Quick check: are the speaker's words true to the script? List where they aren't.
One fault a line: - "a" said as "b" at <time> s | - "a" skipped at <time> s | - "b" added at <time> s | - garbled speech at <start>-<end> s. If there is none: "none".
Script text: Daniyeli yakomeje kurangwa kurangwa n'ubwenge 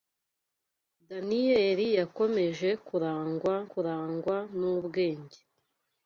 none